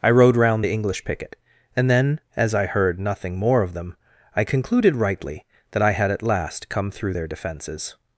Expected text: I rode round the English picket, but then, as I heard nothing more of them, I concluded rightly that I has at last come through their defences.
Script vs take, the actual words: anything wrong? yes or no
yes